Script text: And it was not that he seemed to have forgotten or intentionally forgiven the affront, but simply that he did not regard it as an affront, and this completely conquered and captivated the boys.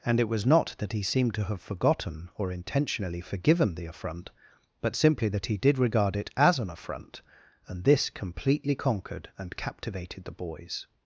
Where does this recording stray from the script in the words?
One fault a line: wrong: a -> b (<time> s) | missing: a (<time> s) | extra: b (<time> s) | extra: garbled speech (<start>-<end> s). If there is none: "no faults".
missing: not (5.8 s)